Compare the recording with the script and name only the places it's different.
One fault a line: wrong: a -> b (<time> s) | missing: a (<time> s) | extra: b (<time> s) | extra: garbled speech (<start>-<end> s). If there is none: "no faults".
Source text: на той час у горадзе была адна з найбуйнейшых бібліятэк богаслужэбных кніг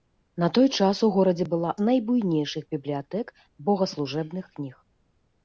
missing: адна (1.8 s)